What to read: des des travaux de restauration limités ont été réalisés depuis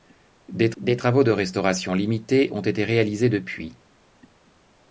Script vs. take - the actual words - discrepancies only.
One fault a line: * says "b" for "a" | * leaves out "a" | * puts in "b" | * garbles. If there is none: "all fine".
all fine